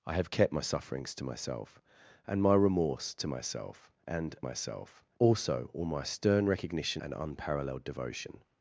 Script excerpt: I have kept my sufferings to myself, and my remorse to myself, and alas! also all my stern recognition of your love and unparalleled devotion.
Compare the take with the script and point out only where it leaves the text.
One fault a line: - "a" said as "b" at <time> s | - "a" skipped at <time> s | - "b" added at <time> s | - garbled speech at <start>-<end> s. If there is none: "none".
- "alas" said as "myself" at 4.4 s
- "of your love" skipped at 7.0 s